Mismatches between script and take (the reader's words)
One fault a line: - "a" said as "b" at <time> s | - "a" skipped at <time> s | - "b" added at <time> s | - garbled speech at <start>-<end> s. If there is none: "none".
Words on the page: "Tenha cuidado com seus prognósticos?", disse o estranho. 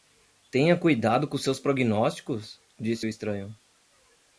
none